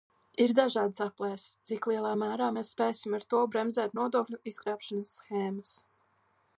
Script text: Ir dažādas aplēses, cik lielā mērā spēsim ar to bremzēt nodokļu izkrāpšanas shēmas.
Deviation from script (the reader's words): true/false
true